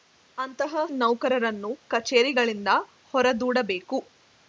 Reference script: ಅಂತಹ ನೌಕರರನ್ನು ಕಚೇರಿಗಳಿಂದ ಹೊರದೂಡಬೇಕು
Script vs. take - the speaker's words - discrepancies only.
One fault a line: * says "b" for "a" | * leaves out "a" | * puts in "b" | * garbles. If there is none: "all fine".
all fine